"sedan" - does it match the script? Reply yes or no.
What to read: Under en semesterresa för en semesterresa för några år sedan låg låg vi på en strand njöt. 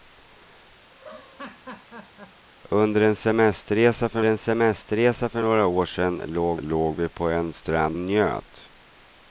yes